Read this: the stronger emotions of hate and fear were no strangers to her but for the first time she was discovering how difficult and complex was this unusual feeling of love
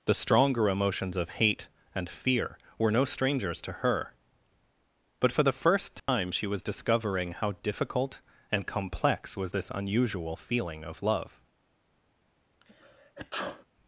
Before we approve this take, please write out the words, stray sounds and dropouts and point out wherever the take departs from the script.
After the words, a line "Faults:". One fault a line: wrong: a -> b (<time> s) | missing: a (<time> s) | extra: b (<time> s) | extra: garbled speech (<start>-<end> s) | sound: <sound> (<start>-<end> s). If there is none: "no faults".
the stronger emotions of hate and fear were no strangers to her but for the first time she was discovering how difficult and complex was this unusual feeling of love
Faults:
sound: dropout (6.0-6.1 s)
sound: sneeze (12.6-13.7 s)